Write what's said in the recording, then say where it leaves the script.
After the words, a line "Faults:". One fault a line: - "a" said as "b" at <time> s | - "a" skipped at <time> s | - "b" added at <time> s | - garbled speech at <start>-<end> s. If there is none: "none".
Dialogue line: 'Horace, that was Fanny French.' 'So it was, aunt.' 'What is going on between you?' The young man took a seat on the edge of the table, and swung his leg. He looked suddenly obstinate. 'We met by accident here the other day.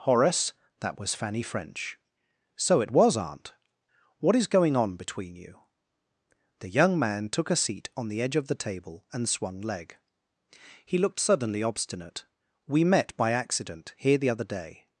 'Horace, that was Fanny French.' 'So it was, aunt.' 'What is going on between you?' The young man took a seat on the edge of the table, and swung leg. He looked suddenly obstinate. 'We met by accident here the other day.
Faults:
- "his" skipped at 9.6 s